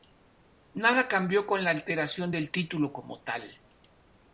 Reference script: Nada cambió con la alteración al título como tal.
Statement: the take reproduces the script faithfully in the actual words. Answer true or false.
false